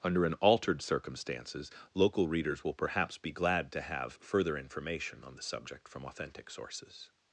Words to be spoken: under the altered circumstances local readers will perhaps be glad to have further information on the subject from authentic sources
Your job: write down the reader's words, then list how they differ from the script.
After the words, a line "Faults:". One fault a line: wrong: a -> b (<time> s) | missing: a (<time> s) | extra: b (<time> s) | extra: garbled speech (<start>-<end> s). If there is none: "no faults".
under an altered circumstances local readers will perhaps be glad to have further information on the subject from authentic sources
Faults:
wrong: the -> an (0.2 s)